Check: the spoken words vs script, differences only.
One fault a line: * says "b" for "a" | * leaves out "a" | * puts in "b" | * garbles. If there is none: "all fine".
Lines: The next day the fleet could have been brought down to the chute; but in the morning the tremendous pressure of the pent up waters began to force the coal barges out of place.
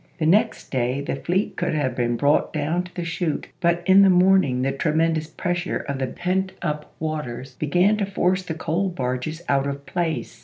all fine